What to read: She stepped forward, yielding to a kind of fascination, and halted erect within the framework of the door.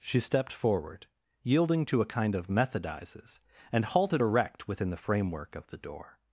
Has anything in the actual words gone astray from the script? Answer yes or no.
yes